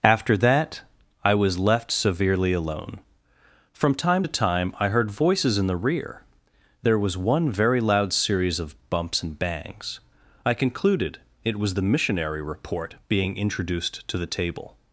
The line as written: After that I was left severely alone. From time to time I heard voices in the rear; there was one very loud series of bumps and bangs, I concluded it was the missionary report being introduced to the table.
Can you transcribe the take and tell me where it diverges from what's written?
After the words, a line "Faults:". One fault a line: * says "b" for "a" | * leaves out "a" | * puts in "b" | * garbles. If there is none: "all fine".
After that I was left severely alone. From time to time I heard voices in the rear; there was one very loud series of bumps and bangs, I concluded it was the missionary report being introduced to the table.
Faults:
all fine